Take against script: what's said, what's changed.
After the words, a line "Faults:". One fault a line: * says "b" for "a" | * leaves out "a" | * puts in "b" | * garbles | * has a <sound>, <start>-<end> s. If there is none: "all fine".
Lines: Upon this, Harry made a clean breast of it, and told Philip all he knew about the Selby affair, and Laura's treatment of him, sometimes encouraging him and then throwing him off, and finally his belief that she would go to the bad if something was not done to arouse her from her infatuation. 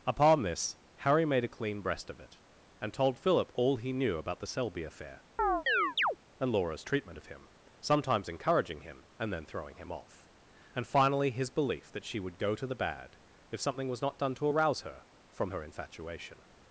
Upon this, Harry made a clean breast of it, and told Philip all he knew about the Selby affair, and Laura's treatment of him, sometimes encouraging him and then throwing him off, and finally his belief that she would go to the bad if something was not done to arouse her from her infatuation.
Faults:
* has a chirp, 5.4-6.2 s